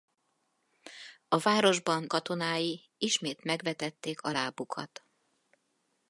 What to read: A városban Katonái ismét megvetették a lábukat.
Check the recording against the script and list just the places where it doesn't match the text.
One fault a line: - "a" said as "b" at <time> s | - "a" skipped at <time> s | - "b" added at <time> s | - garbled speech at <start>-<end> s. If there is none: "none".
none